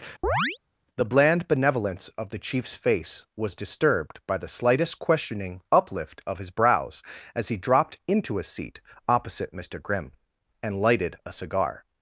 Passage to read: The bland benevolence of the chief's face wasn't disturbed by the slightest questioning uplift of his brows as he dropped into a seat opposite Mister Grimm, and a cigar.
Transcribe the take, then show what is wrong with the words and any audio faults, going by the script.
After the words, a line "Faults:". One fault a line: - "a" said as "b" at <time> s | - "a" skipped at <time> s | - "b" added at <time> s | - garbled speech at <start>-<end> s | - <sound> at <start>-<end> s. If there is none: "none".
The bland benevolence of the chief's face was disturbed by the slightest questioning uplift of his brows as he dropped into a seat opposite Mister Grimm, and lighted a cigar.
Faults:
- chirp at 0.2-0.6 s
- "wasn't" said as "was" at 3.4 s
- "lighted" added at 10.8 s